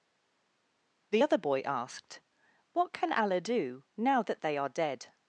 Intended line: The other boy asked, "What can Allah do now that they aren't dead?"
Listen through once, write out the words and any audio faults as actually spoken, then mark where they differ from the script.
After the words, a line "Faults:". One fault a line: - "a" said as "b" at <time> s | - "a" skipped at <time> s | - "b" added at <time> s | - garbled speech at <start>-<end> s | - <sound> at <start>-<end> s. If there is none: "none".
The other boy asked, "What can Allah do now that they are dead?"
Faults:
- "aren't" said as "are" at 4.6 s